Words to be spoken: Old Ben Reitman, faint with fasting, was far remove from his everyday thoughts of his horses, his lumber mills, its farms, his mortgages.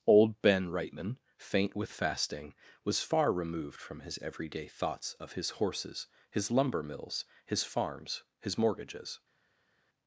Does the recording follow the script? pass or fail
fail